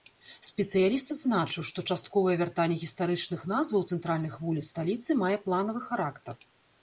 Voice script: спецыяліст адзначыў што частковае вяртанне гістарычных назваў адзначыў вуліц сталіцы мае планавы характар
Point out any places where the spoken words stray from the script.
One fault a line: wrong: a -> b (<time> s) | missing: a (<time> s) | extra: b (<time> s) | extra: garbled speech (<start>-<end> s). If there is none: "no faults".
wrong: адзначыў -> цэнтральных (4.0 s)